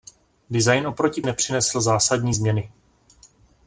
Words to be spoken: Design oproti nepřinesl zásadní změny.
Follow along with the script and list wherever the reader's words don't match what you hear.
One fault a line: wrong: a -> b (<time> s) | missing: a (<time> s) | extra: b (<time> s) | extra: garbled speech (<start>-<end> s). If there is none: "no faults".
no faults